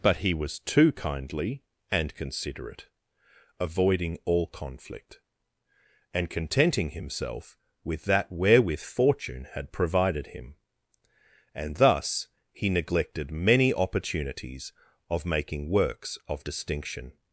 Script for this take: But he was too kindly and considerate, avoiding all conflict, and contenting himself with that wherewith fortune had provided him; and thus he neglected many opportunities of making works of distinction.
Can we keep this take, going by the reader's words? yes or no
yes